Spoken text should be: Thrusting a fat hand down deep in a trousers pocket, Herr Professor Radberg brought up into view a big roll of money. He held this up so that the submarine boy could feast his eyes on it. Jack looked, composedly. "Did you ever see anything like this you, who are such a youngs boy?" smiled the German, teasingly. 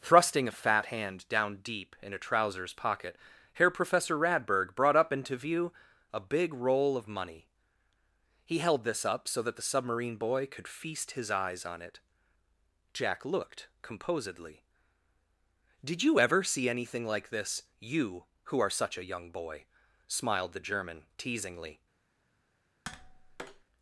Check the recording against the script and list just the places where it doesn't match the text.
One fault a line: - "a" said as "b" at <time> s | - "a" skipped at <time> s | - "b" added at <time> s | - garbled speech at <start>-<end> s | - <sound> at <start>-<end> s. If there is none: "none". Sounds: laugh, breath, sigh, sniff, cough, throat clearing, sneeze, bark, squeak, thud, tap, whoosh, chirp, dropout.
- "youngs" said as "young" at 19.0 s
- tap at 22.8-23.6 s